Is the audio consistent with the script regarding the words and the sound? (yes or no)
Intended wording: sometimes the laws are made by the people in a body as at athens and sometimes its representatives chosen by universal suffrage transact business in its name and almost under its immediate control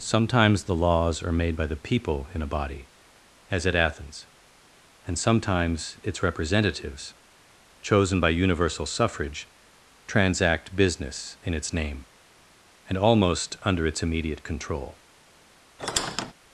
no